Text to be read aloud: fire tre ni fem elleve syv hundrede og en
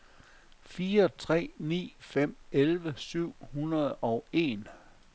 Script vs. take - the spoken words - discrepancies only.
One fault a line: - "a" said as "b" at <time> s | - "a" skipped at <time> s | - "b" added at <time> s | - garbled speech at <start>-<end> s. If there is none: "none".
none